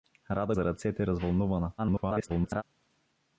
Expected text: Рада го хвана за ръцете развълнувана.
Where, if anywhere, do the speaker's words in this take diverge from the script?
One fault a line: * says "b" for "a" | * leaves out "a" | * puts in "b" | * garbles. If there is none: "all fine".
* leaves out "го хвана"
* garbles